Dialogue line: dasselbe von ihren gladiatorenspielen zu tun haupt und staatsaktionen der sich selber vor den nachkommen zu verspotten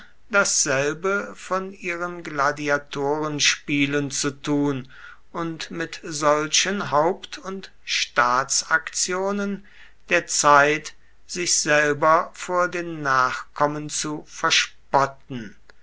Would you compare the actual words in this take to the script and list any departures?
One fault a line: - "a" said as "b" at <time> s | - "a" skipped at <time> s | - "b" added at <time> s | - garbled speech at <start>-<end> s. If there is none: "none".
- "und mit solchen" added at 5.3 s
- "zeit" added at 10.3 s